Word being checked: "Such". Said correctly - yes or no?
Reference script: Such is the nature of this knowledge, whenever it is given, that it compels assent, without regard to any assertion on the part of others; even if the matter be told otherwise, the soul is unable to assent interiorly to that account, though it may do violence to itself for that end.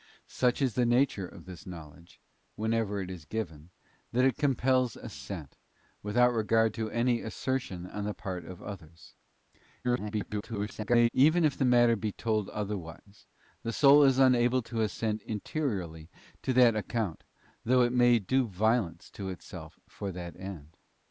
yes